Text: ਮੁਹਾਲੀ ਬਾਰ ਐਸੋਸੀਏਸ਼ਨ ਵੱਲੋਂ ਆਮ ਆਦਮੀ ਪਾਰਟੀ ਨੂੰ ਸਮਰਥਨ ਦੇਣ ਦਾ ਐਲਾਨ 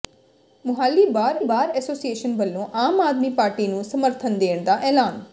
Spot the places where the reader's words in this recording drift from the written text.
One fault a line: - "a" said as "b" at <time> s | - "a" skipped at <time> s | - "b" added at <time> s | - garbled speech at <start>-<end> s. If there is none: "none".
- "ਬਾਰ" added at 1.4 s